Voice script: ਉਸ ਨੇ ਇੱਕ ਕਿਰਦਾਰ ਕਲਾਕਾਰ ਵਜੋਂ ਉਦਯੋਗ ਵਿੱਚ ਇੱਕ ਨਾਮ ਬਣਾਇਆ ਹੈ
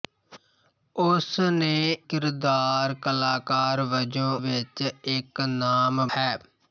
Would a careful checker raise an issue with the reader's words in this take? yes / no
yes